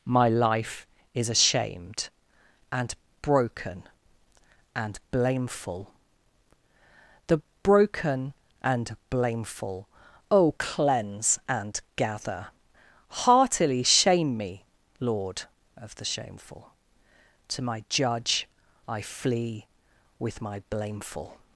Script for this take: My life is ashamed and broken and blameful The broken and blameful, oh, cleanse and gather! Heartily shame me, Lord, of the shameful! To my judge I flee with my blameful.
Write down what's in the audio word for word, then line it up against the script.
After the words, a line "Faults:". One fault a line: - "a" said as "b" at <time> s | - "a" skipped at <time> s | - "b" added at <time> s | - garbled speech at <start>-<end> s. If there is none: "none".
My life is ashamed and broken and blameful The broken and blameful, oh, cleanse and gather! Heartily shame me, Lord, of the shameful! To my judge I flee with my blameful.
Faults:
none